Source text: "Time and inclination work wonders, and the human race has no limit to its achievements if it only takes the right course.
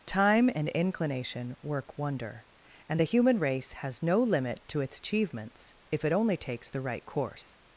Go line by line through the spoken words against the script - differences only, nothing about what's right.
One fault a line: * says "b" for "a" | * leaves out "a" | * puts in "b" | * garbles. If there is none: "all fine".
* says "wonder" for "wonders"